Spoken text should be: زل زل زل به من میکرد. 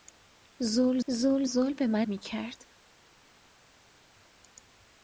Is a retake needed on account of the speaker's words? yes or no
no